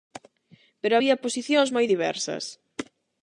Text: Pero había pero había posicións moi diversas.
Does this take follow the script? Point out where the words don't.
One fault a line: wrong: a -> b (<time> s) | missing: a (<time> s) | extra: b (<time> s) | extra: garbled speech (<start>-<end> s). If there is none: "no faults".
missing: pero había (1.2 s)